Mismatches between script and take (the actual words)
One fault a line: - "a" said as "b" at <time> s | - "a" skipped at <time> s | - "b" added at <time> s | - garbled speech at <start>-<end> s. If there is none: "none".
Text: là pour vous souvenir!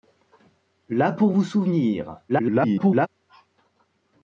- garbled speech at 2.3-3.1 s